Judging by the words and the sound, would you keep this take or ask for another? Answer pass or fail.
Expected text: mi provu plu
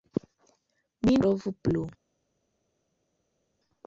pass